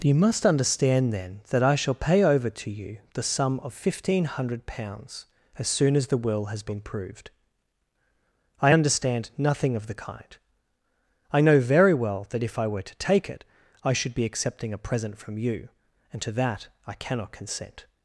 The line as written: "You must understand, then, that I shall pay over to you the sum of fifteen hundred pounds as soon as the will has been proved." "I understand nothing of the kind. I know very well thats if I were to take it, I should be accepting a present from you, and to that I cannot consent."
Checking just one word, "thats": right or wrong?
wrong